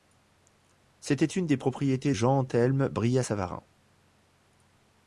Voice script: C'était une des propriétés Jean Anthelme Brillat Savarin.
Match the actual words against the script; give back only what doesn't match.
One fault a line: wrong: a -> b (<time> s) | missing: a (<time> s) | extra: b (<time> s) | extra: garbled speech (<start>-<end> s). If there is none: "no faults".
no faults